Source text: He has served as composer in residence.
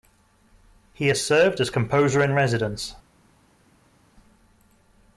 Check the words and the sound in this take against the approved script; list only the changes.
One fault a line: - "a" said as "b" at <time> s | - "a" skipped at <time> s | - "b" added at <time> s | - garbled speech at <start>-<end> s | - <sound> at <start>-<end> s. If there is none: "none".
none